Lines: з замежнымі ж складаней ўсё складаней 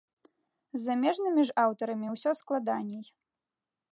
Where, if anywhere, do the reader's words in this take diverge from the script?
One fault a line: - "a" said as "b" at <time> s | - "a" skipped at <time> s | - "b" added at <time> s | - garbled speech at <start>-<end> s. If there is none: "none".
- "складаней" said as "аўтарамі" at 1.6 s